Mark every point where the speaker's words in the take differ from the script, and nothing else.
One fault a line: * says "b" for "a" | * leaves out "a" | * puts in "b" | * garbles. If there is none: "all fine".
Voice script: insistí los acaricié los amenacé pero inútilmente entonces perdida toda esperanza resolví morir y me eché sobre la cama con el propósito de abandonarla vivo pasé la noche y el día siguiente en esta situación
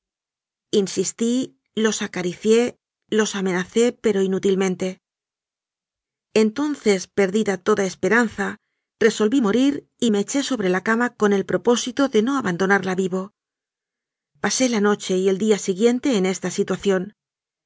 * puts in "no"